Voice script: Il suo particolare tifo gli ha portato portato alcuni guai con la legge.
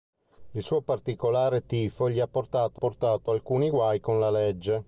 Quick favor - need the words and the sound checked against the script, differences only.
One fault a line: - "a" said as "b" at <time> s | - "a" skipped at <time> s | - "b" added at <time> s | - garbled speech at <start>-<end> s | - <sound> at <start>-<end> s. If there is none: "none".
none